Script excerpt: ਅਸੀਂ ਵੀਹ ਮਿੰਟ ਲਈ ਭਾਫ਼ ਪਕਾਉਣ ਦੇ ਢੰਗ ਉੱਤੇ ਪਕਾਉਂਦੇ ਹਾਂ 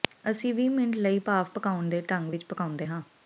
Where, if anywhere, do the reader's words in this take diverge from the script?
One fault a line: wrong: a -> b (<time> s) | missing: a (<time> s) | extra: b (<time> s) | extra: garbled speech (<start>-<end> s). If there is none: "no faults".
wrong: ਉੱਤੇ -> ਵਿੱਚ (2.3 s)